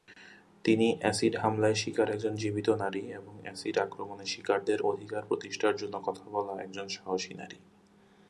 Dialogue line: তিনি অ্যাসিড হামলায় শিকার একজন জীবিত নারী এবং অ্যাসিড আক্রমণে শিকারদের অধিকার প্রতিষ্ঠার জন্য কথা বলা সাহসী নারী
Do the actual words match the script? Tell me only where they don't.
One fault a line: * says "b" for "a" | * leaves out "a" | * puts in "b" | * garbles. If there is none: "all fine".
* puts in "একজন"